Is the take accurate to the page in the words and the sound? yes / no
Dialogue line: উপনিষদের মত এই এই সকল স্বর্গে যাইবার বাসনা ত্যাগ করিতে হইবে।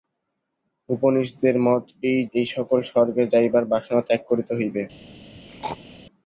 no